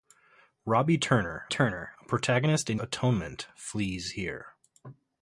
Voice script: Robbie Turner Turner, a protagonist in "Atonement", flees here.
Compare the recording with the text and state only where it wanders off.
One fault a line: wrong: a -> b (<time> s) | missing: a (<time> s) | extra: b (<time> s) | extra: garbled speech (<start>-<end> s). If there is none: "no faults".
no faults